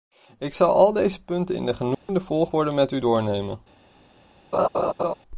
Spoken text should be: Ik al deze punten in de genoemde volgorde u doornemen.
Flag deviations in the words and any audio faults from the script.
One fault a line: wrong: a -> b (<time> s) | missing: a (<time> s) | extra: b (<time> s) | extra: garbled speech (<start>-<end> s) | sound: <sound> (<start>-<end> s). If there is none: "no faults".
extra: zal (0.5 s)
sound: dropout (1.9-2.1 s)
extra: met (2.7 s)
sound: laugh (4.5-5.1 s)